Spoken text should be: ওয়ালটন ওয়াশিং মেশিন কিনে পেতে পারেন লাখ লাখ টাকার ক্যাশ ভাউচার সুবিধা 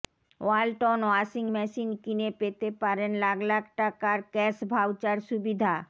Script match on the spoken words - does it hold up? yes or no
yes